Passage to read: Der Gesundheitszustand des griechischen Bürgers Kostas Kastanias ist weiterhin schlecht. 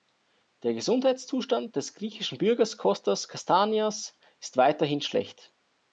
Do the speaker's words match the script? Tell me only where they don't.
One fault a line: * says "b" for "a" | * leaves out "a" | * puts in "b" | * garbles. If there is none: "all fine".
all fine